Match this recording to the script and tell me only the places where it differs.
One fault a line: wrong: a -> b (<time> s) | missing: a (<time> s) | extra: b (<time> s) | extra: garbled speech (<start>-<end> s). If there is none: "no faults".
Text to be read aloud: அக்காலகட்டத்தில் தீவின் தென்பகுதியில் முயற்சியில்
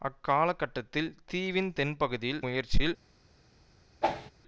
no faults